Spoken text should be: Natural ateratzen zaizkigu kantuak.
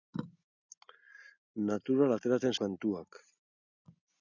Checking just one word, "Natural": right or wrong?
right